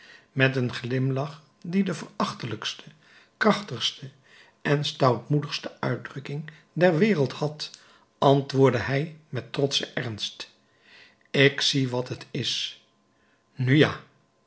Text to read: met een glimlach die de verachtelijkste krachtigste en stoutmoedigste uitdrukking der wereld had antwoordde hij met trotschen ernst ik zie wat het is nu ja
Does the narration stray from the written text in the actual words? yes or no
no